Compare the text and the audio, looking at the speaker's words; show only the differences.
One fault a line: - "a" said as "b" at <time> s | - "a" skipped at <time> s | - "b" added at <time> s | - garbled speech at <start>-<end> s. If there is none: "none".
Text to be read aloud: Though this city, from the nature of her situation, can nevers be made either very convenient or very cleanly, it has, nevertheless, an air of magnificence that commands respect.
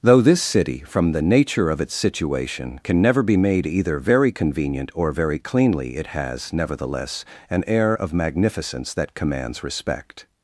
- "her" said as "its" at 1.8 s
- "nevers" said as "never" at 3.0 s